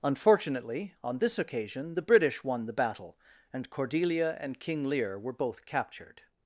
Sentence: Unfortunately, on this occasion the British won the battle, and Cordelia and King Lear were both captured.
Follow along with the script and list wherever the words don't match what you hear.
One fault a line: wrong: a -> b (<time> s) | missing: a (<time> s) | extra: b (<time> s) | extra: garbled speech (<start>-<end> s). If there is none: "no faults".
no faults